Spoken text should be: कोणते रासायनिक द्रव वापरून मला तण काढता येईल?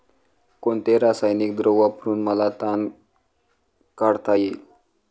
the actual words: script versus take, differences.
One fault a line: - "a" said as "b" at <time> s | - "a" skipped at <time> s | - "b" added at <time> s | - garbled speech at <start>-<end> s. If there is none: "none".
none